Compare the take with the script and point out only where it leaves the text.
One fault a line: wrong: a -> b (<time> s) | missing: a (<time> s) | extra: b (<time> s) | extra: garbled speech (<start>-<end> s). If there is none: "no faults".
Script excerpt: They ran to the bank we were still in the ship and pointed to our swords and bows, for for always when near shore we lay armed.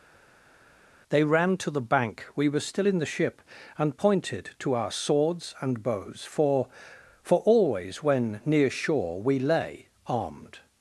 no faults